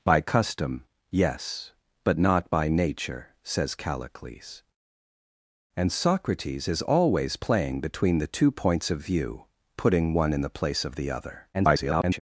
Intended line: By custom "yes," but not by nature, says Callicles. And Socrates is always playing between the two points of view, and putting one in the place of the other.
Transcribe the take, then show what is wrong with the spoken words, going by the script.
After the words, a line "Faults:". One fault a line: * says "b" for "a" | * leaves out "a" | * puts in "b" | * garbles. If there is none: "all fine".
By custom "yes," but not by nature, says Callicles. And Socrates is always playing between the two points of view, putting one in the place of the other. [garbled]
Faults:
* leaves out "and"
* garbles